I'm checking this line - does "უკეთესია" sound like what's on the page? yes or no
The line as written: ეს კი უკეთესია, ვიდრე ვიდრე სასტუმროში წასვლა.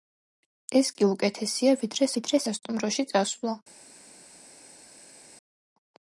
yes